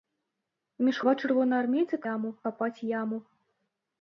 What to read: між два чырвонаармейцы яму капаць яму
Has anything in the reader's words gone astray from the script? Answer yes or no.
no